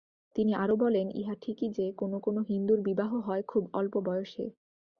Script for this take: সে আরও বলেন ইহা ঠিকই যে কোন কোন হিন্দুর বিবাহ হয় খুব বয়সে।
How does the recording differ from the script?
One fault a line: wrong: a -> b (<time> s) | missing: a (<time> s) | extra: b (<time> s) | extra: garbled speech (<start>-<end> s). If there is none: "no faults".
wrong: সে -> তিনি (0.3 s)
extra: অল্প (3.7 s)